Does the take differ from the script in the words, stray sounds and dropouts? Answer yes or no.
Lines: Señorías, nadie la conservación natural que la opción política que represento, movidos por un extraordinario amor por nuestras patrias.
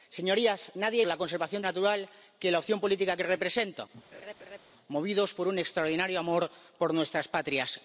yes